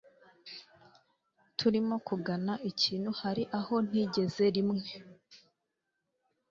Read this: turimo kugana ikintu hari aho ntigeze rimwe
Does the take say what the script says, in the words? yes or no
yes